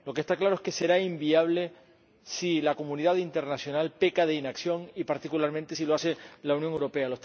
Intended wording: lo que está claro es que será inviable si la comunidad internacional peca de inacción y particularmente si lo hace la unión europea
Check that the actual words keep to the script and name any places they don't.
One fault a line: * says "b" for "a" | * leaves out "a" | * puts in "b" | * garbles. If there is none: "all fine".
all fine